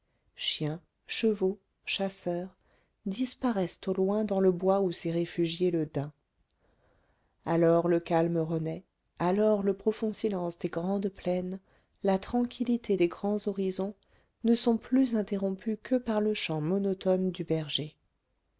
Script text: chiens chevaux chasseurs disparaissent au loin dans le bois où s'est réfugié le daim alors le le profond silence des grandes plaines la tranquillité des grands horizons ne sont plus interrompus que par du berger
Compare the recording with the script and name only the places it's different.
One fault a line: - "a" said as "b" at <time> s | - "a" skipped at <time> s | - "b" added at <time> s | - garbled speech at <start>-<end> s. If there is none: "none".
- "calme renaît alors" added at 8.0 s
- "le chant monotone" added at 16.2 s